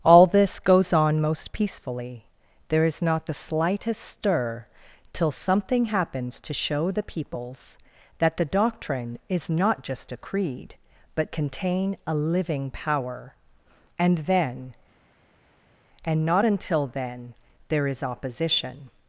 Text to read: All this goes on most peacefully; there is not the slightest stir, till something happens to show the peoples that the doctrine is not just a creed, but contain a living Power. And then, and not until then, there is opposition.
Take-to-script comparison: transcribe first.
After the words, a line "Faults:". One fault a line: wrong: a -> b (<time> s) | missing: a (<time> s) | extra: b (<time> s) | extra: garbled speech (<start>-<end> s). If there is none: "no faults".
All this goes on most peacefully; there is not the slightest stir, till something happens to show the peoples that the doctrine is not just a creed, but contain a living Power. And then, and not until then, there is opposition.
Faults:
no faults